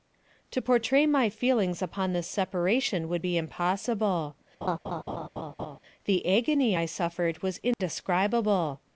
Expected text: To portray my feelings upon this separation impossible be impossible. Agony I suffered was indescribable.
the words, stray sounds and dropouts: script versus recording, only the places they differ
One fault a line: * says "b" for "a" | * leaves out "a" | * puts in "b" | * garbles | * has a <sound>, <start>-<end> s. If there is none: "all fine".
* says "would" for "impossible"
* has a laugh, 4.6-5.8 s
* puts in "The"
* has a dropout, 7.7-7.8 s